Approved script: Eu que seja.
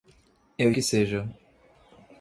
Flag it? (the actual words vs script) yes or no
no